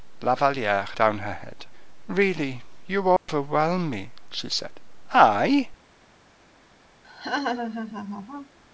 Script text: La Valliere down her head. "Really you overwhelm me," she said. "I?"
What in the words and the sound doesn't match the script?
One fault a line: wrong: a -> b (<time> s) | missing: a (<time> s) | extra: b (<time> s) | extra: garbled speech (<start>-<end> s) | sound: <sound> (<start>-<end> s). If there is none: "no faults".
sound: dropout (3.2-3.3 s)
sound: laugh (7.0-8.6 s)